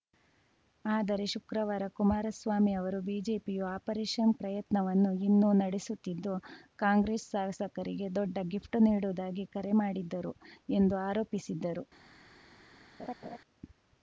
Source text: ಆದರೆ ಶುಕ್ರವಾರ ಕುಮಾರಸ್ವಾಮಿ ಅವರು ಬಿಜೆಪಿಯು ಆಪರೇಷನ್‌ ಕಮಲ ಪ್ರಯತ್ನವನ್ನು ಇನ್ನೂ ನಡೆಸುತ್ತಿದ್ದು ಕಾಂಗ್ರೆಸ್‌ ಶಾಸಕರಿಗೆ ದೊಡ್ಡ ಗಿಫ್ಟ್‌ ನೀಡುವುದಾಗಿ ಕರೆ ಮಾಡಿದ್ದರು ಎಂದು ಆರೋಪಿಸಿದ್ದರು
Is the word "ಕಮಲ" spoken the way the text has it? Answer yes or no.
no